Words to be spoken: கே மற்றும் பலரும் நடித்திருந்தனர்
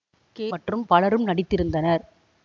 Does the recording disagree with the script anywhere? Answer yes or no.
no